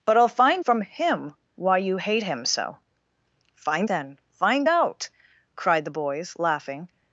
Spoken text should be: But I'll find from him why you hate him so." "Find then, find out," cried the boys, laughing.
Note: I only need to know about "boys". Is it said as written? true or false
true